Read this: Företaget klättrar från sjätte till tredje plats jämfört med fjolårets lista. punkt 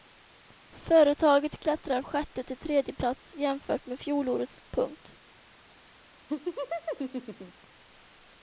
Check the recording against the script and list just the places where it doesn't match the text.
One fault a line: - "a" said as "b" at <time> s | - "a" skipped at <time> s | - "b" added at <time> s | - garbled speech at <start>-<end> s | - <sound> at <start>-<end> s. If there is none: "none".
- "från" skipped at 2.0 s
- "lista" skipped at 4.6 s
- laugh at 6.3-7.7 s